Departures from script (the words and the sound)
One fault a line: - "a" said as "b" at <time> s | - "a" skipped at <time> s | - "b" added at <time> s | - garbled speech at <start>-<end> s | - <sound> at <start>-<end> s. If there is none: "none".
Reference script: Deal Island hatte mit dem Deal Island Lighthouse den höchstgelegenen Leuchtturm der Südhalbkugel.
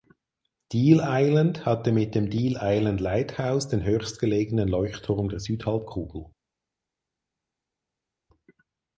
none